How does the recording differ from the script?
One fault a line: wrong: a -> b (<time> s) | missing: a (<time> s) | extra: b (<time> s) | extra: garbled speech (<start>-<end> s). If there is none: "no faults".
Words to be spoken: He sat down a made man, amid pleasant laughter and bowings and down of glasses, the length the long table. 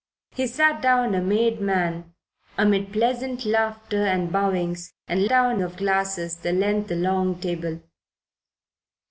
no faults